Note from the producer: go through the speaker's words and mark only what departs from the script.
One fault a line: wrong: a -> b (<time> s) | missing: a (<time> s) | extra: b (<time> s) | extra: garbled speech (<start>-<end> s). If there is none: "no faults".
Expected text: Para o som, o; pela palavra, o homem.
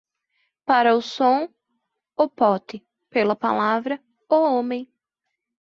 extra: pote (2.3 s)